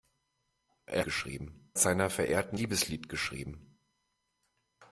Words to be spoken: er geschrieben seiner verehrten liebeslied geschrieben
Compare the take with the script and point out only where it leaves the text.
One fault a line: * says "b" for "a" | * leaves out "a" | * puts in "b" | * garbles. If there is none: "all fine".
all fine